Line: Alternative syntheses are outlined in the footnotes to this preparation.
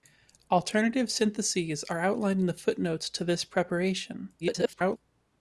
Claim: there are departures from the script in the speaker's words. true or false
true